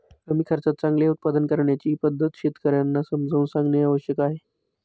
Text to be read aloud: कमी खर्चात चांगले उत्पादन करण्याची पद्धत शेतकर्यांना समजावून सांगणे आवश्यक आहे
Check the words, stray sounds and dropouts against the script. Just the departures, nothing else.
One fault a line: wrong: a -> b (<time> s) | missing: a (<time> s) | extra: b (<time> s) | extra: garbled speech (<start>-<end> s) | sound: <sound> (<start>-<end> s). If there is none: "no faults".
no faults